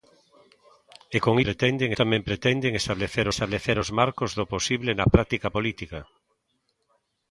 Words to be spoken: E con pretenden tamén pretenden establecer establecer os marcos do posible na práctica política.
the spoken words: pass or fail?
pass